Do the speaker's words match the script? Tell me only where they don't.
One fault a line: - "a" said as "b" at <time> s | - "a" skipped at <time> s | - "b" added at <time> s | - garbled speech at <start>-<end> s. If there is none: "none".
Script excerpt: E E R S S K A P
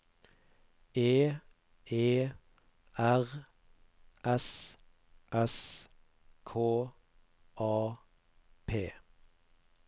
none